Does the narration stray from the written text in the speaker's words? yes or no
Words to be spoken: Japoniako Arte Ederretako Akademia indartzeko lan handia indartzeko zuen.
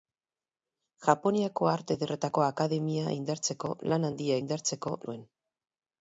no